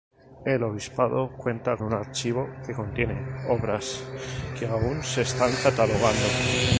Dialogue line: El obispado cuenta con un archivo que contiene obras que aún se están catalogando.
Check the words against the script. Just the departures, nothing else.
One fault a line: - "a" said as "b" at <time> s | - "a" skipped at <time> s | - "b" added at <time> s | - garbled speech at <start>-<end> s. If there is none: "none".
- "con" skipped at 1.8 s